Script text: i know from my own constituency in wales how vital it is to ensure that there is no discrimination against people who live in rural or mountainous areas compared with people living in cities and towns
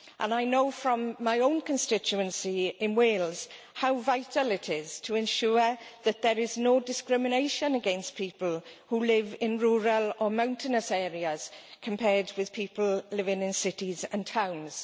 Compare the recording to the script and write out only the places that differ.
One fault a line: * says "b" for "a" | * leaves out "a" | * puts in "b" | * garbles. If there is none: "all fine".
all fine